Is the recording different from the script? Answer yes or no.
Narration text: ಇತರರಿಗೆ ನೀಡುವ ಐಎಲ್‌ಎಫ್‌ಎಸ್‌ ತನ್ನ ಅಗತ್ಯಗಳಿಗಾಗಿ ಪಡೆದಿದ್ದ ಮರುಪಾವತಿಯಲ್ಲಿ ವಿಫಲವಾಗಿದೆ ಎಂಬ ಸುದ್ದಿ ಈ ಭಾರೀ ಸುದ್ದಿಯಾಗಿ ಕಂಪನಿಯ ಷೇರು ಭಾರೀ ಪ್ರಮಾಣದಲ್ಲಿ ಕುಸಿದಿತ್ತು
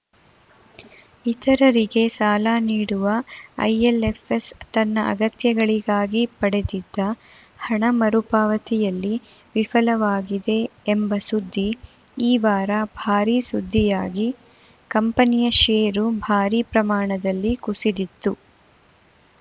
yes